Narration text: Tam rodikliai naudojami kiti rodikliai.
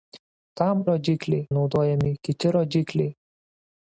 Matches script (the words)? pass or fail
pass